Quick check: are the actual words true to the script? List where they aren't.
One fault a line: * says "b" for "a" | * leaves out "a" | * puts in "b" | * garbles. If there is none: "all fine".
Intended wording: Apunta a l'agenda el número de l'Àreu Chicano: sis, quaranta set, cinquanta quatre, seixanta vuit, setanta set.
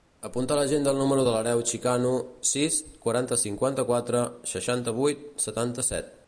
* leaves out "set"